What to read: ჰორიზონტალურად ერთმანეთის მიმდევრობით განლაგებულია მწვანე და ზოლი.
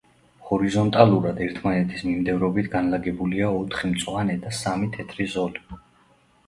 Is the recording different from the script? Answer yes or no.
yes